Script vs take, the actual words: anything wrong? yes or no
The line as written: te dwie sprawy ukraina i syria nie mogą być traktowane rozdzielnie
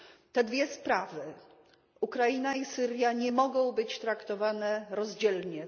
no